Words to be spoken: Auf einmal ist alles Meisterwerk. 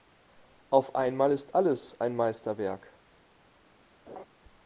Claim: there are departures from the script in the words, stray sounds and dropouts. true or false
true